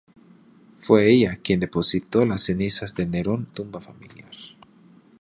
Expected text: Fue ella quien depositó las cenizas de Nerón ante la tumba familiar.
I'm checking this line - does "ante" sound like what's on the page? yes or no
no